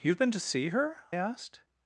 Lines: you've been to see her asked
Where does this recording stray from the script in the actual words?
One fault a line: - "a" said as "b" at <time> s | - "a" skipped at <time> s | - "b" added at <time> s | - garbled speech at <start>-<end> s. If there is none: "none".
none